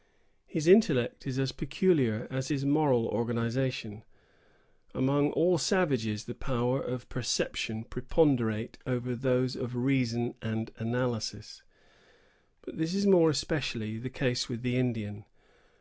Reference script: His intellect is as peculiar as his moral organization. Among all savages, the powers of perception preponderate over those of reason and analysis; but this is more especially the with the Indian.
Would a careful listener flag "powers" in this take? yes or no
no